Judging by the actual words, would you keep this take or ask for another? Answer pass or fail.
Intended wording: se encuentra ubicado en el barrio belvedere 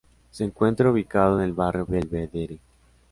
pass